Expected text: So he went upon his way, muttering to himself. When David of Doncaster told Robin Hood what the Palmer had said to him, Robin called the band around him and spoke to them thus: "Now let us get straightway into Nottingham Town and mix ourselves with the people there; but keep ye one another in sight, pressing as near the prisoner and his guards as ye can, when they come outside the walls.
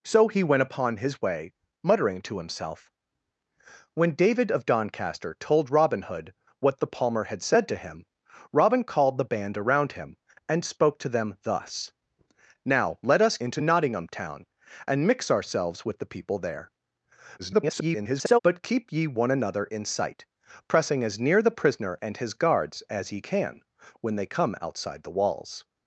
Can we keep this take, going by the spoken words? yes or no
no